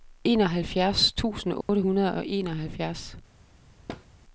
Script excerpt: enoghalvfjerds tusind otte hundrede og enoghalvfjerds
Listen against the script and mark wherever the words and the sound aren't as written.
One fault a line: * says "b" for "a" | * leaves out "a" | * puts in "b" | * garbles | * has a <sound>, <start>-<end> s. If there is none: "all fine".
* has a dropout, 1.6-1.7 s
* has a thud, 3.9-4.1 s